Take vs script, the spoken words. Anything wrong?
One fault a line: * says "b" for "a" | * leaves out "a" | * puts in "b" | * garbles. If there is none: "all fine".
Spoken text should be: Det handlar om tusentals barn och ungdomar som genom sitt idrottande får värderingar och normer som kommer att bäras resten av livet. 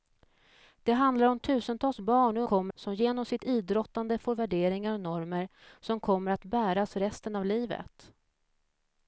* says "kommer" for "ungdomar"